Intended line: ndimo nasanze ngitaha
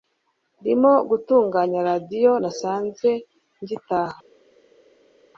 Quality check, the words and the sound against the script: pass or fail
fail